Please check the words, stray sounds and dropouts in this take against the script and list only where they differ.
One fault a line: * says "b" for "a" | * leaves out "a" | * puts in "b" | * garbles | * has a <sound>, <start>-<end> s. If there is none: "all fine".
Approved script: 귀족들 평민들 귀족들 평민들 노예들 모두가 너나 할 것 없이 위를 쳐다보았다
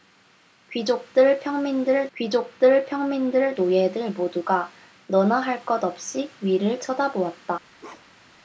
* has a bark, 7.8-8.4 s